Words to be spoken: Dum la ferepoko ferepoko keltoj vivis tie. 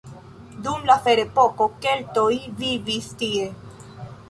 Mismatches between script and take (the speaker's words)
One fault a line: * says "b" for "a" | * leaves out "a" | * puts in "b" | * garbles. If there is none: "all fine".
* leaves out "ferepoko"